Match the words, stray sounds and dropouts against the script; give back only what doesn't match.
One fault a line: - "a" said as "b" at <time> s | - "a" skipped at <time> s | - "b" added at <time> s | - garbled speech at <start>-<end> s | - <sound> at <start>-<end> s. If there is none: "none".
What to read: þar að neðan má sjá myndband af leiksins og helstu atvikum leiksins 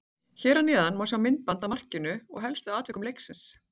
- "þar" said as "hér" at 0.4 s
- "leiksins" said as "markinu" at 1.7 s